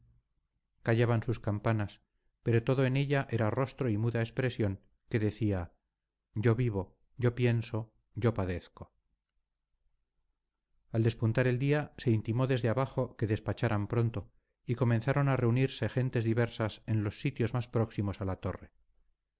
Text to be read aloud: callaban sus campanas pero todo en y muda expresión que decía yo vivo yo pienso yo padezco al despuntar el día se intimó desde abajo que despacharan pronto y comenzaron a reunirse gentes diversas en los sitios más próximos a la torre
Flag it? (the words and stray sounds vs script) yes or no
yes